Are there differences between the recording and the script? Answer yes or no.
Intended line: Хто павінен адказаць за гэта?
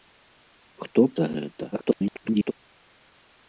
yes